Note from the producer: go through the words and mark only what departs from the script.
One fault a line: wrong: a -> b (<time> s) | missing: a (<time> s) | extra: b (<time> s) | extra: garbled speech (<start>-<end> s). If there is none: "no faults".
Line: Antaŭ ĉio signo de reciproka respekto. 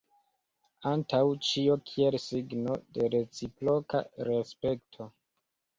extra: kiel (1.9 s)